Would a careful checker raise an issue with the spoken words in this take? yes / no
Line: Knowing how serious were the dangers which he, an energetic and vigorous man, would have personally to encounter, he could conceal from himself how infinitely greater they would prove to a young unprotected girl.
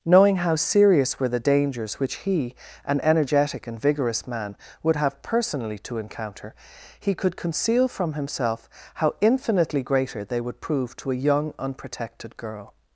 no